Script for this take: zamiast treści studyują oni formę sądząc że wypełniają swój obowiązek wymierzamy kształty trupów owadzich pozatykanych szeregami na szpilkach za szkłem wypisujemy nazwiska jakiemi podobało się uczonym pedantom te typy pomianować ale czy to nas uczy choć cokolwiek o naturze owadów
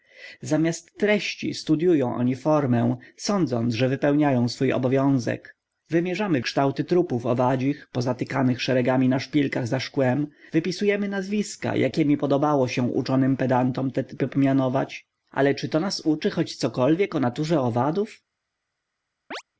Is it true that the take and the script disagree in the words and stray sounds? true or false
true